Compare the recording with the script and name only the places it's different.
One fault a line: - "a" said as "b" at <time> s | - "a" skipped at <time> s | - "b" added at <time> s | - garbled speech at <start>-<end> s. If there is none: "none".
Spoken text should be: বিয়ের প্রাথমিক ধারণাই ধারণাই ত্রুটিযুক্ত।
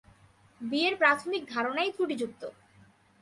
- "ধারণাই" skipped at 1.9 s